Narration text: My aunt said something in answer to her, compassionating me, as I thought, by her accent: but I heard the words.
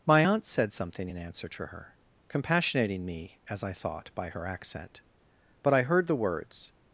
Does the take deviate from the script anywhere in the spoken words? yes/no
no